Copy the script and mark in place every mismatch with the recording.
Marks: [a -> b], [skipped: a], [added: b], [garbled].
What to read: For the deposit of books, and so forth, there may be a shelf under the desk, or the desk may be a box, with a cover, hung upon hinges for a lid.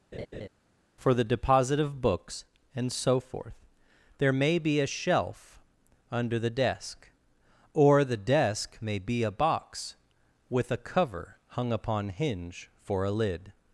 For the deposit of books, and so forth, there may be a shelf under the desk, or the desk may be a box, with a cover, hung upon [hinges -> hinge] for a lid.